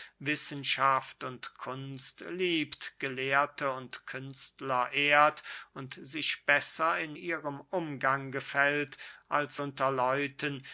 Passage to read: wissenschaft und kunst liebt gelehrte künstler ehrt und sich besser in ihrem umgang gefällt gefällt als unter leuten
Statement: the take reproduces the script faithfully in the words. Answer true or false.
false